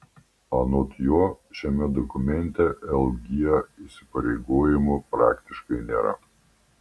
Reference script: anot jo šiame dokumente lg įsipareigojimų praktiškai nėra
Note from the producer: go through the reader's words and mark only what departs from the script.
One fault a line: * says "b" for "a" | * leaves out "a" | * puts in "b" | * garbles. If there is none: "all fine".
all fine